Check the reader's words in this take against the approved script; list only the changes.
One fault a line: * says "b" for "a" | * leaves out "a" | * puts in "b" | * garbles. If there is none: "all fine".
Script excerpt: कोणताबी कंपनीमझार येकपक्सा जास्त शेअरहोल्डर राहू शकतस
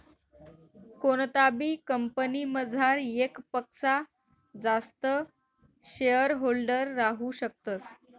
all fine